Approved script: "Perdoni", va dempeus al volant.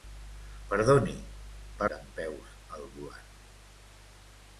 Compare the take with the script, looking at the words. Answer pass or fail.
pass